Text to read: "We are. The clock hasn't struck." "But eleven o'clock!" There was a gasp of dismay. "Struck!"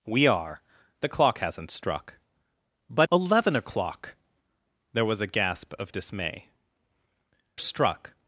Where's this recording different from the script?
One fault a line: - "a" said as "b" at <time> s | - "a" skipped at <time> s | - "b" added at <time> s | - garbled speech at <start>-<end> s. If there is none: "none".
none